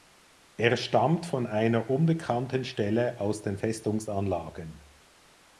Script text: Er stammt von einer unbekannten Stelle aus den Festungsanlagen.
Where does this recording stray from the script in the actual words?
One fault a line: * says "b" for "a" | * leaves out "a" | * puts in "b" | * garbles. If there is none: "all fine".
all fine